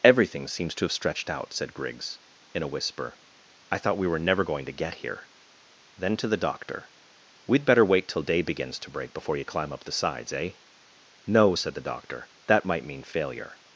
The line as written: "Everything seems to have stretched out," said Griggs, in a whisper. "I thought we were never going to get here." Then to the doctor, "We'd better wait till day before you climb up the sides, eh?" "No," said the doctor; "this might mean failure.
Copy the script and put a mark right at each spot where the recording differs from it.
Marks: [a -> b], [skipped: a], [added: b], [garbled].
"Everything seems to have stretched out," said Griggs, in a whisper. "I thought we were never going to get here." Then to the doctor, "We'd better wait till day [added: begins to break] before you climb up the sides, eh?" "No," said the doctor; ["this -> that] might mean failure.